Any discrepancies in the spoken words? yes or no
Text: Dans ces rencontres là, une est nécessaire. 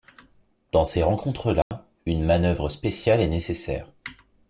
yes